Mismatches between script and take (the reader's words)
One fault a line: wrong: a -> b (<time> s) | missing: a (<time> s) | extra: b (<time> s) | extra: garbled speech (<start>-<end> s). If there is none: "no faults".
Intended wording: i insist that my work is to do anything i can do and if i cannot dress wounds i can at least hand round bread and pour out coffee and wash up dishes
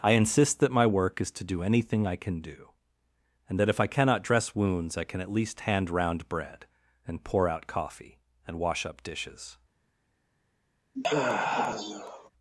extra: that (3.6 s)